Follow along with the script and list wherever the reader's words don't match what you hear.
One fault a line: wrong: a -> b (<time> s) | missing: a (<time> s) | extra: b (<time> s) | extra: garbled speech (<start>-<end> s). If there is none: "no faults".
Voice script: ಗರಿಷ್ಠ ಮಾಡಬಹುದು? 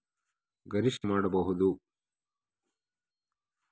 no faults